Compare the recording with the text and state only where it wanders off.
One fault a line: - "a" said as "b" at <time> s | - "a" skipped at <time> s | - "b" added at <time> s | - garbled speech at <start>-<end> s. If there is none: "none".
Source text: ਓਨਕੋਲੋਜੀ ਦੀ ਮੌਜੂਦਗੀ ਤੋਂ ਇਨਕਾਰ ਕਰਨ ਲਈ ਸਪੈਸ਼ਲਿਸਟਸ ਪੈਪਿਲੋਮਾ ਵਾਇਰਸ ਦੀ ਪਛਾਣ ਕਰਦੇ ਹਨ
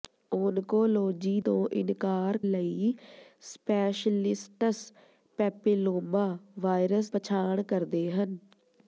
- "ਦੀ ਮੌਜੂਦਗੀ" skipped at 1.4 s
- "ਕਰਨ" skipped at 2.4 s
- "ਦੀ" skipped at 7.1 s